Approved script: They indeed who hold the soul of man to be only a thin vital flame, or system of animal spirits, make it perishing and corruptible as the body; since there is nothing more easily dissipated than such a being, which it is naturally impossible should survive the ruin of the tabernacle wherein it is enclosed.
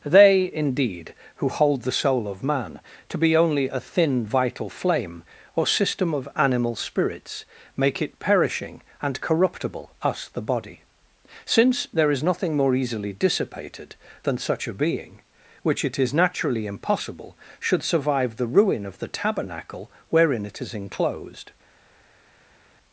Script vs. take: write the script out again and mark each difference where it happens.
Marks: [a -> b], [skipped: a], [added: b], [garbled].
They indeed who hold the soul of man to be only a thin vital flame, or system of animal spirits, make it perishing and corruptible [as -> us] the body; since there is nothing more easily dissipated than such a being, which it is naturally impossible should survive the ruin of the tabernacle wherein it is enclosed.